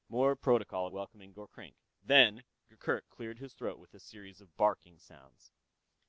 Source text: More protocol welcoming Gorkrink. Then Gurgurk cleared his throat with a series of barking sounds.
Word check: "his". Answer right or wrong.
right